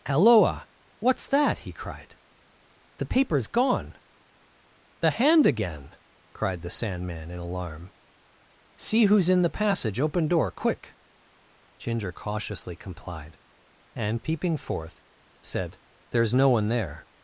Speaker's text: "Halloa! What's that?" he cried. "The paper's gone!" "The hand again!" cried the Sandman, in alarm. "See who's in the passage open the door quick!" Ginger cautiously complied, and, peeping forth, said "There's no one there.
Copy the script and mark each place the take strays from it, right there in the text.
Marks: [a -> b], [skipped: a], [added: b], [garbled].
"Halloa! What's that?" he cried. "The paper's gone!" "The hand again!" cried the Sandman, in alarm. "See who's in the passage open [skipped: the] door quick!" Ginger cautiously complied, and, peeping forth, said "There's no one there.